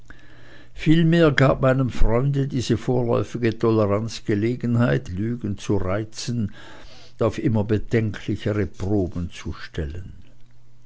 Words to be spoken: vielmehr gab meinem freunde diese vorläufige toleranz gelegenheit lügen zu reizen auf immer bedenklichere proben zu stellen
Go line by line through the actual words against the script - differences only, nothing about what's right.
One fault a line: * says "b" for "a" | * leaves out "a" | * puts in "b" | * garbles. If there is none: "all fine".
all fine